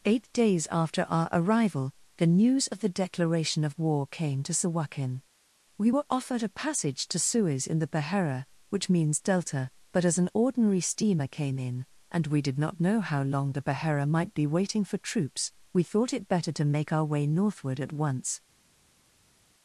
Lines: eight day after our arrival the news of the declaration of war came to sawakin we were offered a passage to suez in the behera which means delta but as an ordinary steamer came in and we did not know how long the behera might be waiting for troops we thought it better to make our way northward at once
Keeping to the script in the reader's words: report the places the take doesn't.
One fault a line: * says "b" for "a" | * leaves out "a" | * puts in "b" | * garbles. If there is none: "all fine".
* says "days" for "day"